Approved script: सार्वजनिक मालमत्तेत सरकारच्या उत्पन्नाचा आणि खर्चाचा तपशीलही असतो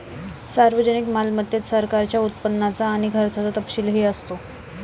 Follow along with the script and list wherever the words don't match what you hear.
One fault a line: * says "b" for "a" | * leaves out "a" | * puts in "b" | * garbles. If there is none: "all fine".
all fine